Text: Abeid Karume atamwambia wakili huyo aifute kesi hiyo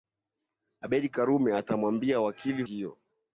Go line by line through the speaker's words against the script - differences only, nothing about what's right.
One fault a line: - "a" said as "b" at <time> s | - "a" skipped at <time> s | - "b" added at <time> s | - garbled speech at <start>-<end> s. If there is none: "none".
- "huyo aifute kesi" skipped at 2.6 s